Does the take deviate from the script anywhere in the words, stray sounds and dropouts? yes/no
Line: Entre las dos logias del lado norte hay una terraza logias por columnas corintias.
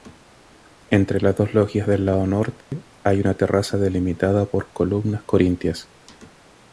yes